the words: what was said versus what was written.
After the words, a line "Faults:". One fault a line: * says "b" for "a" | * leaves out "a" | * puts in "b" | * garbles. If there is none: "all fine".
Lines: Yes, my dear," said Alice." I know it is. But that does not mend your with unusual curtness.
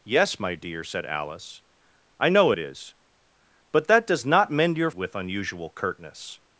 Yes, my dear," said Alice." I know it is. But that does not mend your with unusual curtness.
Faults:
all fine